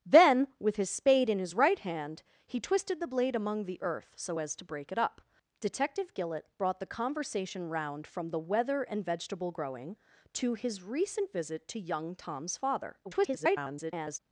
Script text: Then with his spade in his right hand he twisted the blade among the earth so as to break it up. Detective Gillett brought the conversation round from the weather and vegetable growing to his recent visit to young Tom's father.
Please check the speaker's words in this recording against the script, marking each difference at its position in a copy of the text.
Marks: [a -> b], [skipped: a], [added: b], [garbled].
Then with his spade in his right hand he twisted the blade among the earth so as to break it up. Detective Gillett brought the conversation round from the weather and vegetable growing to his recent visit to young Tom's father. [garbled]